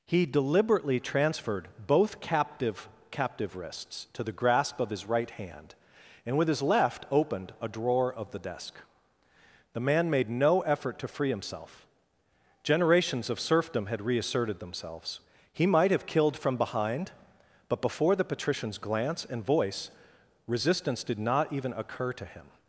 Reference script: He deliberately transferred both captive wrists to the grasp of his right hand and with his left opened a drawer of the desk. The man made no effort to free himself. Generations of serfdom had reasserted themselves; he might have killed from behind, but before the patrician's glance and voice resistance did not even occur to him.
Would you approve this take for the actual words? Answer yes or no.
no